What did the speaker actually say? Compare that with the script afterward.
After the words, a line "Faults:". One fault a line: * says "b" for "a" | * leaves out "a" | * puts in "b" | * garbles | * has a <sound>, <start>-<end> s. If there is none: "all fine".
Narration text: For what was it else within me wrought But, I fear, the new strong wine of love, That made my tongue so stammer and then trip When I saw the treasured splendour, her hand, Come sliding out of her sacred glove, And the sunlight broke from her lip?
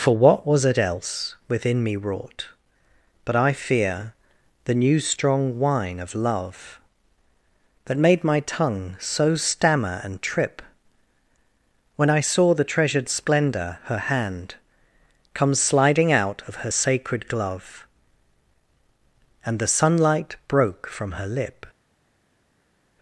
For what was it else within me wrought But, I fear, the new strong wine of love, That made my tongue so stammer and trip When I saw the treasured splendour, her hand, Come sliding out of her sacred glove, And the sunlight broke from her lip?
Faults:
* leaves out "then"